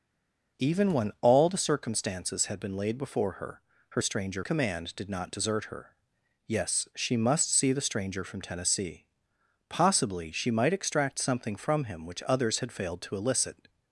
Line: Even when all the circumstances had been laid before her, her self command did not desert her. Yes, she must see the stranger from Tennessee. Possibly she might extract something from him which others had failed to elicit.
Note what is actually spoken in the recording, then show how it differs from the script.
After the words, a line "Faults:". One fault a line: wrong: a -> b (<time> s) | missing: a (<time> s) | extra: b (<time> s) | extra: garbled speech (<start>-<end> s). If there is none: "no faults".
Even when all the circumstances had been laid before her, her stranger command did not desert her. Yes, she must see the stranger from Tennessee. Possibly she might extract something from him which others had failed to elicit.
Faults:
wrong: self -> stranger (4.0 s)